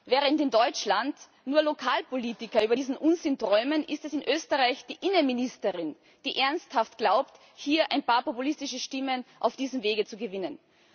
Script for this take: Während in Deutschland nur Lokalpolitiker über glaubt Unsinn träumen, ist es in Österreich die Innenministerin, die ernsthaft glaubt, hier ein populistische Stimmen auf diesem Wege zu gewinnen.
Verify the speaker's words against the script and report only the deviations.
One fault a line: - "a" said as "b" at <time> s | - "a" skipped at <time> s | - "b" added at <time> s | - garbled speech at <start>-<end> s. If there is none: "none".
- "glaubt" said as "diesen" at 2.7 s
- "paar" added at 8.0 s